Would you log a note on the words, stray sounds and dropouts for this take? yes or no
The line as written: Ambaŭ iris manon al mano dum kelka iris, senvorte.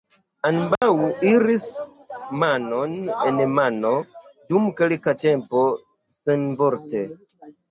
yes